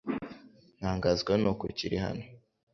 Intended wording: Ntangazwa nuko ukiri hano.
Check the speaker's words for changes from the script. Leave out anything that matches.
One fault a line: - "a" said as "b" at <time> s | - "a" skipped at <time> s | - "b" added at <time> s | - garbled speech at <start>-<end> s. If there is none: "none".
none